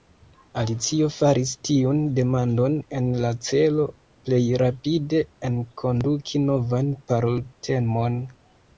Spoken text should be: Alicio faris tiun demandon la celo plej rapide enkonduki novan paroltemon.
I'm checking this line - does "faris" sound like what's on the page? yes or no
yes